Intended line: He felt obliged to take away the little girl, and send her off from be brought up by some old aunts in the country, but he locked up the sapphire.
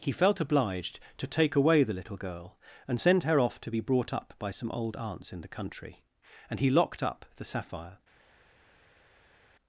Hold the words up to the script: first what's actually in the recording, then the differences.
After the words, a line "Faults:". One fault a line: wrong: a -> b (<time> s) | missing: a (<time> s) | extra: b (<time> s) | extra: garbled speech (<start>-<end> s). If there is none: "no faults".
He felt obliged to take away the little girl, and send her off to be brought up by some old aunts in the country, and he locked up the sapphire.
Faults:
wrong: from -> to (3.6 s)
wrong: but -> and (6.5 s)